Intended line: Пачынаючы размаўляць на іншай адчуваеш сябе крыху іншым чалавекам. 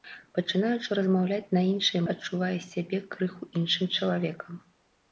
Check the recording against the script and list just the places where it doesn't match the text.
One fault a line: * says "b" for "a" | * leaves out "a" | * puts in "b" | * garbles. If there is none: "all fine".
all fine